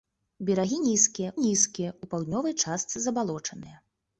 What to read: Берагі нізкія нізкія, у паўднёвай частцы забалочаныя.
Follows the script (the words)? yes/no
yes